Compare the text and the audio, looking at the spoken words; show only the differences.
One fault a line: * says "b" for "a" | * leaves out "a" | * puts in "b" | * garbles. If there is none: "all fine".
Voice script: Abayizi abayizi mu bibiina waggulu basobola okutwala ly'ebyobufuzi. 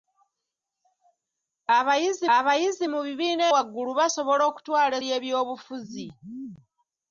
all fine